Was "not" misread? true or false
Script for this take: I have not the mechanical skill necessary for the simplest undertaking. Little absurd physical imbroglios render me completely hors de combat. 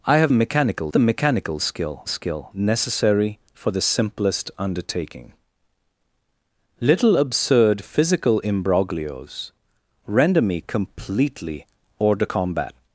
true